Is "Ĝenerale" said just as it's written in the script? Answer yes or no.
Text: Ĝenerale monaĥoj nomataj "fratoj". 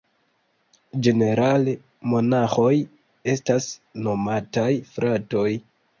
yes